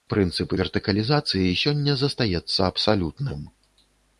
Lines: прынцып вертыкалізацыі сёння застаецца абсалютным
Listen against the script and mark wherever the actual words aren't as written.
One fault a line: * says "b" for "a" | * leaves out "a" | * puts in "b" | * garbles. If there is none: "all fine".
all fine